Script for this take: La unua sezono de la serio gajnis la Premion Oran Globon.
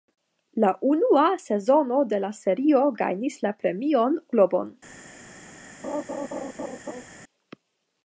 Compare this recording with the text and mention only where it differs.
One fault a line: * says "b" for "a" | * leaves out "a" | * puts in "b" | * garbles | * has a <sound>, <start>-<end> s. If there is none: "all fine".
* leaves out "Oran"
* has a laugh, 5.8-7.0 s